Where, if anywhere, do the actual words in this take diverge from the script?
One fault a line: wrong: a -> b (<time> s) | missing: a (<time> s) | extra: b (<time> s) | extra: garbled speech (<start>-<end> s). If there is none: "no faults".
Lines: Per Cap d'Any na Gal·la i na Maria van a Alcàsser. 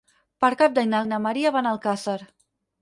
missing: Gal·la (1.0 s)